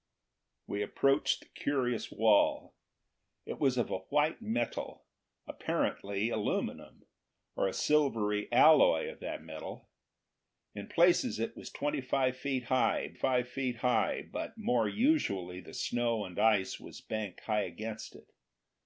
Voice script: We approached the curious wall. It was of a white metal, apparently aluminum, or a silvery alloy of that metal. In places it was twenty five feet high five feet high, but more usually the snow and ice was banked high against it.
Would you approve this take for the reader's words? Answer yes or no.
yes